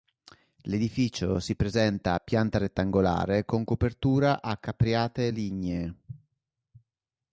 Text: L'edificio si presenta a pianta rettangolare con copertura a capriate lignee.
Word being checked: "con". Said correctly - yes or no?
yes